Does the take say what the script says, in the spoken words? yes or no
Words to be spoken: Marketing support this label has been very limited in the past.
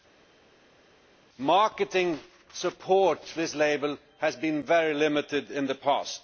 yes